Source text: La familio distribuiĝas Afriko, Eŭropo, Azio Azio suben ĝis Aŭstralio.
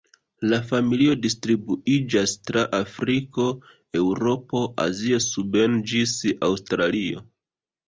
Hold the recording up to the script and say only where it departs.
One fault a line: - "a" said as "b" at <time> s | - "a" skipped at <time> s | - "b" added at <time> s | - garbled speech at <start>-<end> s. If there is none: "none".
- "tra" added at 2.5 s
- "Azio" skipped at 5.2 s